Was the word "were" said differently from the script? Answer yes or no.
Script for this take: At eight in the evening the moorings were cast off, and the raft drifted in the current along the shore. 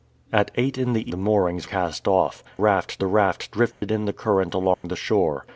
yes